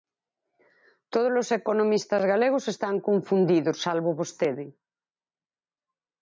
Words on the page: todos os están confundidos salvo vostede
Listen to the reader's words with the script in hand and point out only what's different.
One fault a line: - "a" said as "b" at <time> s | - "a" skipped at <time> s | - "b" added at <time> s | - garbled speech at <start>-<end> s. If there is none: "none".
- "economistas galegos" added at 1.6 s